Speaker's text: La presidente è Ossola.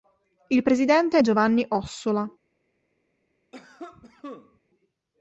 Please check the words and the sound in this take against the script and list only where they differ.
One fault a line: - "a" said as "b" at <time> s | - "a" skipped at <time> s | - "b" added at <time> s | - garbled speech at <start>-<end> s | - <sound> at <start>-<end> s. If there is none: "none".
- "La" said as "Il" at 0.5 s
- "Giovanni" added at 1.2 s
- cough at 3.5-4.6 s